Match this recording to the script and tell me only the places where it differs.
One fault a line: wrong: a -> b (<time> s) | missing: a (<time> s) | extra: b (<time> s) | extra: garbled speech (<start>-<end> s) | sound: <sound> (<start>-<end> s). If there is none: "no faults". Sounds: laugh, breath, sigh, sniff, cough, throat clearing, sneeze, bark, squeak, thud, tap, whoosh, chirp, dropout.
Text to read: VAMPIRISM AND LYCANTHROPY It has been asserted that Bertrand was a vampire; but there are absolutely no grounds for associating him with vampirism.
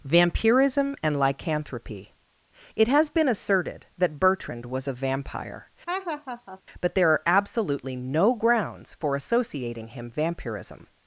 sound: laugh (5.9-6.6 s)
missing: with (10.1 s)